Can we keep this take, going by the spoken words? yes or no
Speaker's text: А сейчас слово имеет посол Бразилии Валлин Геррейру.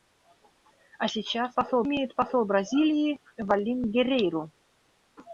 no